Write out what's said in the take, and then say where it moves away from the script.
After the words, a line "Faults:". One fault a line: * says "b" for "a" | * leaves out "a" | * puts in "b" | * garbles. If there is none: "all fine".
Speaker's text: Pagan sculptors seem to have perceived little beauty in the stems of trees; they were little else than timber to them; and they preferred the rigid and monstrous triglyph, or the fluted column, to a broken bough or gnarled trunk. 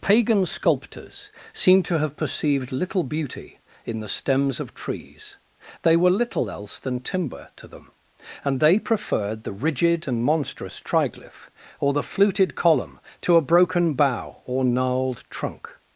Pagan sculptors seem to have perceived little beauty in the stems of trees; they were little else than timber to them; and they preferred the rigid and monstrous triglyph, or the fluted column, to a broken bough or gnarled trunk.
Faults:
all fine